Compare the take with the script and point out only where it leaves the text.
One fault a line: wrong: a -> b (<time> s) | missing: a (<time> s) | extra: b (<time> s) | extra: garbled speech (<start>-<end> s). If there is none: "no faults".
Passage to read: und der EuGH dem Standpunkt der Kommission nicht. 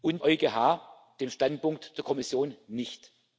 missing: der (0.2 s)